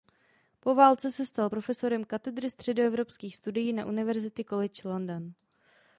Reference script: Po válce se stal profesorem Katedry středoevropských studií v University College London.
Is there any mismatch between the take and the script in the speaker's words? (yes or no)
yes